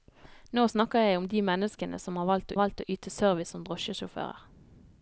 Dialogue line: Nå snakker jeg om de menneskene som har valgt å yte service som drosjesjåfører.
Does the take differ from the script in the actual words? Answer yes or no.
yes